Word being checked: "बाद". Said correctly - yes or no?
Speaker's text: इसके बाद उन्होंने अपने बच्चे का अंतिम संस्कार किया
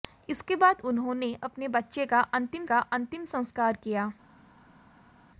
yes